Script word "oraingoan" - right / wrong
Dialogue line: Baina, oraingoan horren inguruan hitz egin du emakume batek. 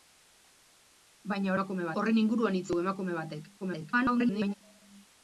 wrong